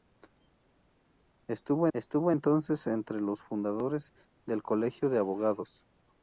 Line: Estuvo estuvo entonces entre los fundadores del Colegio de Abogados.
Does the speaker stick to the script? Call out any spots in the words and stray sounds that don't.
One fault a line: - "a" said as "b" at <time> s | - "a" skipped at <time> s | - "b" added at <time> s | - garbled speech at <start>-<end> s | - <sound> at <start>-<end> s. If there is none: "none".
none